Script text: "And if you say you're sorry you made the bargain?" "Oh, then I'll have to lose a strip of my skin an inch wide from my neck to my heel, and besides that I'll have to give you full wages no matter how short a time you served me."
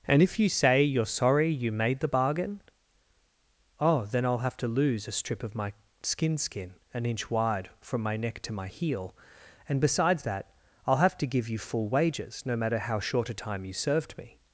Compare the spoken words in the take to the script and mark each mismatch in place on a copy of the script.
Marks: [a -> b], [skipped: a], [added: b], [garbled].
"And if you say you're sorry you made the bargain?" "Oh, then I'll have to lose a strip of my skin [added: skin] an inch wide from my neck to my heel, and besides that I'll have to give you full wages no matter how short a time you served me."